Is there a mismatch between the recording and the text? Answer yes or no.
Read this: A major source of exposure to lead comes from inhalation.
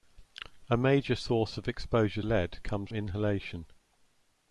yes